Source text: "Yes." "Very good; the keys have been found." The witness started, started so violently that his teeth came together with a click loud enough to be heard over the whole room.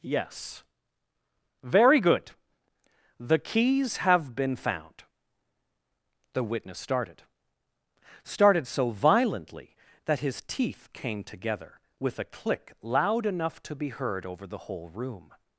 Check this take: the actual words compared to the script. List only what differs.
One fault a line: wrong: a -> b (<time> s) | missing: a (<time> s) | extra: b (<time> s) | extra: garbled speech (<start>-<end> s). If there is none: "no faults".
no faults